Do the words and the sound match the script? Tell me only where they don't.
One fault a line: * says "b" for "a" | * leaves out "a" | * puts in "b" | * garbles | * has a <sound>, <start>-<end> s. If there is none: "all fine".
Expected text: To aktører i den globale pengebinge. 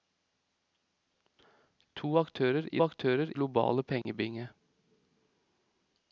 * says "aktører" for "den"
* has a dropout, 4.0-4.1 s